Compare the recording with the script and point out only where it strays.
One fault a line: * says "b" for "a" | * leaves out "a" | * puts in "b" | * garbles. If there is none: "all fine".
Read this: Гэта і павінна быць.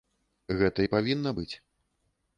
all fine